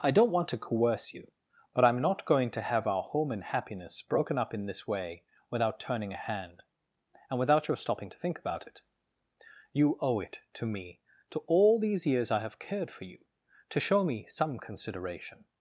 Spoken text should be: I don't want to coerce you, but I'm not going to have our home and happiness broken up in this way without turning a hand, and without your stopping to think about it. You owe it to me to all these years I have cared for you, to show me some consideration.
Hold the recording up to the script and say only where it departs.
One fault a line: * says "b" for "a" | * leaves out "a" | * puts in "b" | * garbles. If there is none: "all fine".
all fine